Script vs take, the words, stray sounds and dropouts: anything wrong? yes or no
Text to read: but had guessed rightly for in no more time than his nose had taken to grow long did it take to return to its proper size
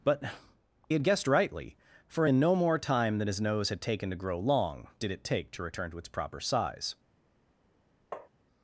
yes